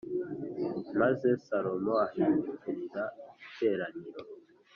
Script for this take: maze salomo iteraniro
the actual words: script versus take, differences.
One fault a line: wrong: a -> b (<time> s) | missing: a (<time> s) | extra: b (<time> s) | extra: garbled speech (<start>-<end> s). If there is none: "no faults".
extra: ahindukirira (2.0 s)